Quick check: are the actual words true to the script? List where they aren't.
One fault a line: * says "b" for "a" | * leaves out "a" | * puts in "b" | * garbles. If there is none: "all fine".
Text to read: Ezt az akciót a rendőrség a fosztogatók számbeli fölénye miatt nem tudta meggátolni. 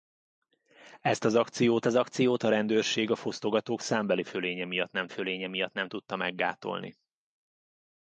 * puts in "az akciót"
* puts in "fölénye miatt nem"